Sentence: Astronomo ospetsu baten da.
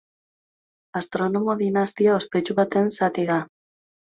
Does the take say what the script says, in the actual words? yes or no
no